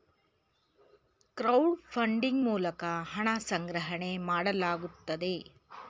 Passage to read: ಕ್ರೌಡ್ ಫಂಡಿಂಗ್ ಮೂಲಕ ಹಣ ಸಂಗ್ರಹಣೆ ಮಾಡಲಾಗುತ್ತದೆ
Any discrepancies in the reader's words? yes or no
no